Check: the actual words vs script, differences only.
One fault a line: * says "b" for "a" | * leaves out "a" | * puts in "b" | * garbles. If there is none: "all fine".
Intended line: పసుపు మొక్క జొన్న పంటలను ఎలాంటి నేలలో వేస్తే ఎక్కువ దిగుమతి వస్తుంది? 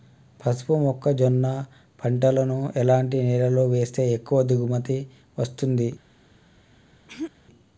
all fine